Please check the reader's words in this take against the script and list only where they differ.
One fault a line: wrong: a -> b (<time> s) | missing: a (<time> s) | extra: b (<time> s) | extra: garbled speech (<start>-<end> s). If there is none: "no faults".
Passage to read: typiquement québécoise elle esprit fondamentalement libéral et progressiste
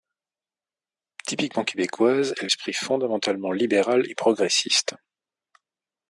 no faults